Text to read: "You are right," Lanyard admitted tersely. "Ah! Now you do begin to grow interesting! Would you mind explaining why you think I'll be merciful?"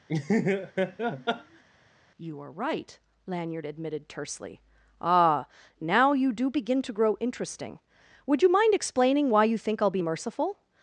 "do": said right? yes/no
yes